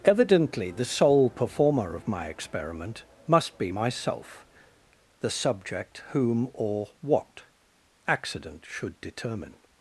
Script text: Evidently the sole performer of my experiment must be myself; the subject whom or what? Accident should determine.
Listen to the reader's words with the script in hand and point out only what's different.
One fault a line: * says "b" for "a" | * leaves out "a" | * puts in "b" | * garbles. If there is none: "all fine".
all fine